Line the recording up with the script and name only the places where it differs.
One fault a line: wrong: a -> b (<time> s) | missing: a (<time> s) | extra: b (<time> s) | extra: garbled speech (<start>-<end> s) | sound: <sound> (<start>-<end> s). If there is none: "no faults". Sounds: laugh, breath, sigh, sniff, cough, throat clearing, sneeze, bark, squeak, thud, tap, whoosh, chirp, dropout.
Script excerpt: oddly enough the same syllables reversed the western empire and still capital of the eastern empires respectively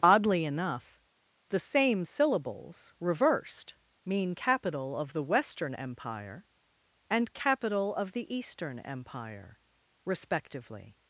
extra: mean capital of (4.0 s)
missing: still (7.3 s)
wrong: empires -> empire (8.8 s)